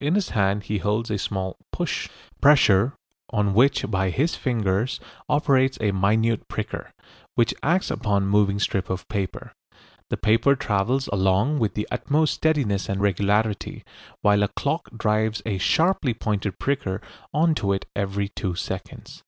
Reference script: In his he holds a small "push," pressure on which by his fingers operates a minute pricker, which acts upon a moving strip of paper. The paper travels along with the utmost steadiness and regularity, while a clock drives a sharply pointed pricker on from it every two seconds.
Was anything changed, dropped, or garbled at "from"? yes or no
yes